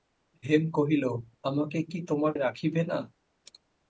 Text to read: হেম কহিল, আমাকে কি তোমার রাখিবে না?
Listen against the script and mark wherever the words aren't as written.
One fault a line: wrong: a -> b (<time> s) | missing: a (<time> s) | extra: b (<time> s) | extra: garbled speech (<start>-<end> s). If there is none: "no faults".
no faults